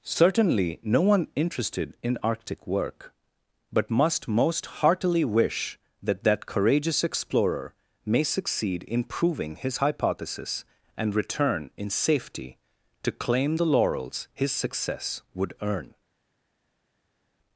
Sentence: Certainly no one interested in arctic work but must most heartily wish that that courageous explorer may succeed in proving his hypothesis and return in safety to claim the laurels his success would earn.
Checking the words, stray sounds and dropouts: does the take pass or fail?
pass